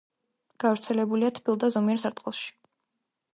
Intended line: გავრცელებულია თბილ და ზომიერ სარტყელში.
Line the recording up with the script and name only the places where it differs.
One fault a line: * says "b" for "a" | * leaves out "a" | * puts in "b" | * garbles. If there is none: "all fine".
all fine